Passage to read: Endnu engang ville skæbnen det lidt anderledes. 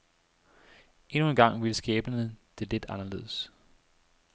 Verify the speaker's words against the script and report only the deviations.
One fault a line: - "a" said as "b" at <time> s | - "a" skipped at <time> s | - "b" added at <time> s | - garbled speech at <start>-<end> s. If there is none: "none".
none